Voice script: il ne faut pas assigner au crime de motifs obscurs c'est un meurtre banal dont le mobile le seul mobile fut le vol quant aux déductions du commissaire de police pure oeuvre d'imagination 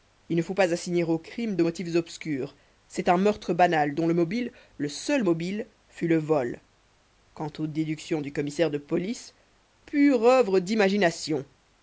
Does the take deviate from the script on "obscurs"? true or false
false